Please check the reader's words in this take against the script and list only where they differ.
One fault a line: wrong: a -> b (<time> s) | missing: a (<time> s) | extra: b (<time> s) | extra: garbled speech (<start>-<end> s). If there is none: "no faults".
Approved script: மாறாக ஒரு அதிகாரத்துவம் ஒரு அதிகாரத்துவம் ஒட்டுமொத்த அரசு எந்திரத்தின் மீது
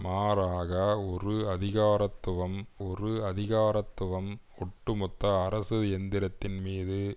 no faults